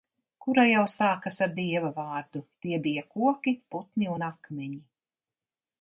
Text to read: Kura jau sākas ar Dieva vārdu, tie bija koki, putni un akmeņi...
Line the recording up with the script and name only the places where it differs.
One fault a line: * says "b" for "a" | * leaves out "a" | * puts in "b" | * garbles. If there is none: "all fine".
all fine